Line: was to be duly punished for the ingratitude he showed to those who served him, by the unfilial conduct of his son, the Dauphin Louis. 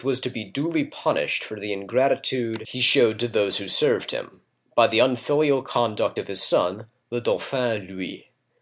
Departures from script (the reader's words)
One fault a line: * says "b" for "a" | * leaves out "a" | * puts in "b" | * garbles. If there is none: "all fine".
all fine